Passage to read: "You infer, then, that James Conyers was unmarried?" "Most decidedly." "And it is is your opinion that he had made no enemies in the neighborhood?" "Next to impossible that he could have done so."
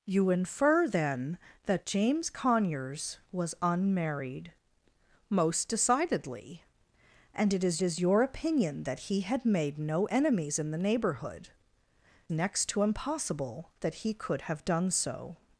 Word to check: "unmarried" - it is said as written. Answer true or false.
true